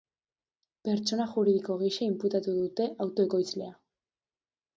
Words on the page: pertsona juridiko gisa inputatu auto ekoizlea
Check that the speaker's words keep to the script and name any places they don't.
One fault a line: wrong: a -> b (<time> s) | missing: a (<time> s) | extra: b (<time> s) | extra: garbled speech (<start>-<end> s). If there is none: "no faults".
extra: dute (2.6 s)